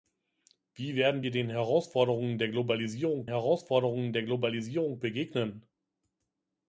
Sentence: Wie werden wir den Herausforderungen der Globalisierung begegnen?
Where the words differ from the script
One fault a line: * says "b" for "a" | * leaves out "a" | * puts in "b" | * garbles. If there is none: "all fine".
* puts in "Herausforderungen der Globalisierung"